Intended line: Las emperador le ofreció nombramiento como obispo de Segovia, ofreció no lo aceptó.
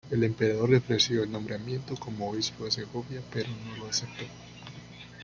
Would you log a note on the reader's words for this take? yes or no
yes